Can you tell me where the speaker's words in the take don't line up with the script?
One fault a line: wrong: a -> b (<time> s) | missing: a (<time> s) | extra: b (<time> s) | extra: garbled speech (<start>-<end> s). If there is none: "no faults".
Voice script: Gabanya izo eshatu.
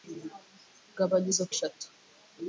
no faults